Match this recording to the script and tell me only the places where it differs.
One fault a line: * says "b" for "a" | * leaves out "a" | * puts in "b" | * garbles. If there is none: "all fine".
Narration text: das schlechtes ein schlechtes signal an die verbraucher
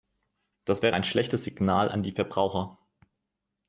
* says "wäre" for "schlechtes"